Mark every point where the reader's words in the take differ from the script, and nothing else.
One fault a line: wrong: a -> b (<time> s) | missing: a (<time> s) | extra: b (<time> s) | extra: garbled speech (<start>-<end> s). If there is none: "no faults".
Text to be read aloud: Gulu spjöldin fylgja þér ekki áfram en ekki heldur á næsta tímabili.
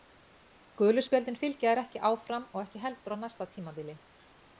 wrong: en -> og (2.5 s)